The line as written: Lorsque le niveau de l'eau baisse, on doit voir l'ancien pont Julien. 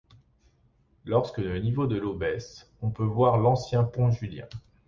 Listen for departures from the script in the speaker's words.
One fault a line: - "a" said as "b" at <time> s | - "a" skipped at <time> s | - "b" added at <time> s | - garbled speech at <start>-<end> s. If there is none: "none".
- "doit" said as "peut" at 2.9 s